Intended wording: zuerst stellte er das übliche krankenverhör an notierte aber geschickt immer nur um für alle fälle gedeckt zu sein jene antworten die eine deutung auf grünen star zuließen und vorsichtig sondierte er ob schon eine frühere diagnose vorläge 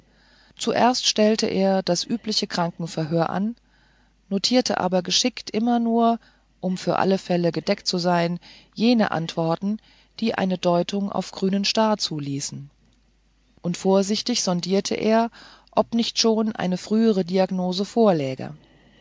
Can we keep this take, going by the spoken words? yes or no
no